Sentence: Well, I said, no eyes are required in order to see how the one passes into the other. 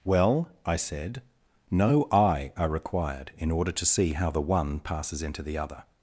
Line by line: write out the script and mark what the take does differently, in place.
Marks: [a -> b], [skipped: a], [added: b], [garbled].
Well, I said, no [eyes -> eye] are required in order to see how the one passes into the other.